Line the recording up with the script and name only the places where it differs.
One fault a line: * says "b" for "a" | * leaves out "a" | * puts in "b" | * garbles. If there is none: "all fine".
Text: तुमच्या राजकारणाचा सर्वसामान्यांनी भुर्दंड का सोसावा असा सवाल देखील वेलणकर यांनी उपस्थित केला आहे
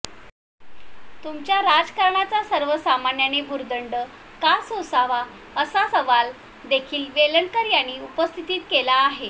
all fine